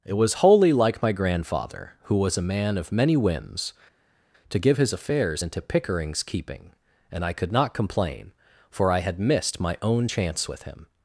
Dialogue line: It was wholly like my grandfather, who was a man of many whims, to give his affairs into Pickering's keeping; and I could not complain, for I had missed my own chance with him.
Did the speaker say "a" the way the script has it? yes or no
yes